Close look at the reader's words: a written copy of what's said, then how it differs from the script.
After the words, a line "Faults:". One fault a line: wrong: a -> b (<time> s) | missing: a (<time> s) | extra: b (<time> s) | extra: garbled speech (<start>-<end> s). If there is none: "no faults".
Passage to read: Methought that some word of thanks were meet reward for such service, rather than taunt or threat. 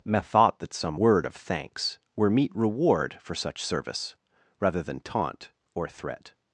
Methought that some word of thanks were meet reward for such service, rather than taunt or threat.
Faults:
no faults